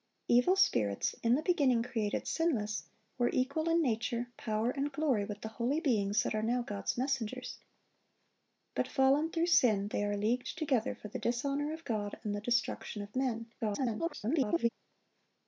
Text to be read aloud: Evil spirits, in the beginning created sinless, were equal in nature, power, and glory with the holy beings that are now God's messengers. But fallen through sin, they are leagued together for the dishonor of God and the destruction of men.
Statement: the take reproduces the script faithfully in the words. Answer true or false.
false